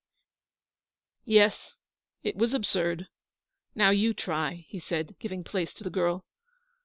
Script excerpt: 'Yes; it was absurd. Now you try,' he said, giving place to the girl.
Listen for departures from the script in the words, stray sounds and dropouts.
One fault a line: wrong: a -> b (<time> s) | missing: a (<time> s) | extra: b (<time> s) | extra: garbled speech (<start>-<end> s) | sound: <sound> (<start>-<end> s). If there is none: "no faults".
no faults